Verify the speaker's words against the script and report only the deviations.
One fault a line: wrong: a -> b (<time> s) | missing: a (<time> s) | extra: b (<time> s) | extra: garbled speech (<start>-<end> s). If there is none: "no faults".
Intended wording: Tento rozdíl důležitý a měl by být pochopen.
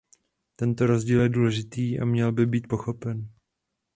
extra: je (1.2 s)